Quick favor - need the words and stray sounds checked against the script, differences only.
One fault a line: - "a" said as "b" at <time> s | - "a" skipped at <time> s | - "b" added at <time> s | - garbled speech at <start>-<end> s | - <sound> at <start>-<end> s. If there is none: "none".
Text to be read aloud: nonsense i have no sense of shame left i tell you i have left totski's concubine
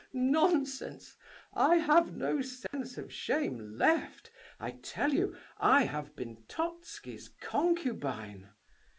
- dropout at 2.7-2.7 s
- "left" said as "been" at 6.1 s